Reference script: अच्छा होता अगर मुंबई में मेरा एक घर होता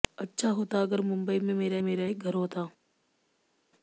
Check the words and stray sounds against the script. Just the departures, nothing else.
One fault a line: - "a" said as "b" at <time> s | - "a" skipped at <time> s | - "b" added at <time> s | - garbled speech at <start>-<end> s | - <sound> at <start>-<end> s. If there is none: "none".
- "मेरा" added at 1.8 s